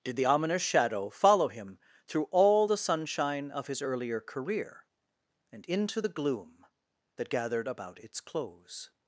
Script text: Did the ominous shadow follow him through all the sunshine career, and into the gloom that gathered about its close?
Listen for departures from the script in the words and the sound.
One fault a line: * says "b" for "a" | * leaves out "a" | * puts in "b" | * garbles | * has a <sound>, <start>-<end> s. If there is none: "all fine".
* puts in "of his earlier"